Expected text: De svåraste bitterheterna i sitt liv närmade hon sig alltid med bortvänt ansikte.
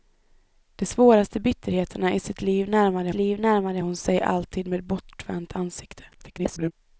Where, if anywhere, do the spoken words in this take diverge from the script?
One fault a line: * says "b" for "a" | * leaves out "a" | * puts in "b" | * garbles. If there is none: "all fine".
* puts in "liv närmade"
* garbles